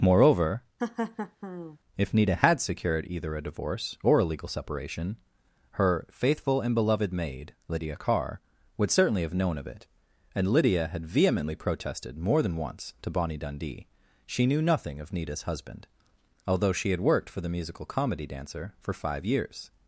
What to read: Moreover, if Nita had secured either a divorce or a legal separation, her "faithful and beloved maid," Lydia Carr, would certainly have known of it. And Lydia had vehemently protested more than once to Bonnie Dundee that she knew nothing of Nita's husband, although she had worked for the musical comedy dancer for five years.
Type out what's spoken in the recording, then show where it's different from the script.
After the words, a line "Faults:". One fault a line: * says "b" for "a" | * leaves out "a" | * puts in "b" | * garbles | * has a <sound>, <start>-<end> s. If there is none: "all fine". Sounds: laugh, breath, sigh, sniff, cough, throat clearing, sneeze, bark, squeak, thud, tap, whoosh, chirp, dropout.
Moreover, if Nita had secured either a divorce or a legal separation, her "faithful and beloved maid," Lydia Carr, would certainly have known of it. And Lydia had vehemently protested more than once to Bonnie Dundee she knew nothing of Nita's husband, although she had worked for the musical comedy dancer for five years.
Faults:
* has a laugh, 0.8-1.8 s
* leaves out "that"